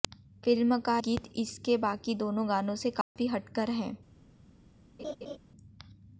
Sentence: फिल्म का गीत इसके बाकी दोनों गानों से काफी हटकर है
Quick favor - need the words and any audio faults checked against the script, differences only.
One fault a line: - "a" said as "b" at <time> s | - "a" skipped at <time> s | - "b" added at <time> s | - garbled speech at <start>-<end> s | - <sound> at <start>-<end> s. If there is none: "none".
- dropout at 3.0-3.2 s
- laugh at 5.0-5.4 s